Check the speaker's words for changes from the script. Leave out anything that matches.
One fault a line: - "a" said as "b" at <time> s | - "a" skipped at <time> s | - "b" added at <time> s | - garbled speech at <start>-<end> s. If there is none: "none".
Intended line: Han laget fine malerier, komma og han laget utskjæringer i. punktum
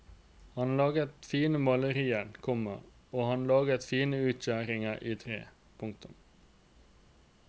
- "fine" added at 3.9 s
- "tre" added at 5.2 s